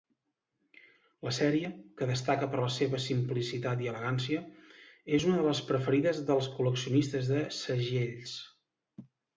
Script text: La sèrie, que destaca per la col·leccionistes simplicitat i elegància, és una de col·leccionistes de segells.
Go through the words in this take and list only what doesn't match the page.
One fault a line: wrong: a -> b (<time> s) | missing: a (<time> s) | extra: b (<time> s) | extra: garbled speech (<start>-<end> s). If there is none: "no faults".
wrong: col·leccionistes -> seva (2.8 s)
extra: les preferides dels (5.5 s)